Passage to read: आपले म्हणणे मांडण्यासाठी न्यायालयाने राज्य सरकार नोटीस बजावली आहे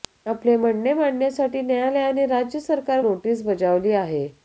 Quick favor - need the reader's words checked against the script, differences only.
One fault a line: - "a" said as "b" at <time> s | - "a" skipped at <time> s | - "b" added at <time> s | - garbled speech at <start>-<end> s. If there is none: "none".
none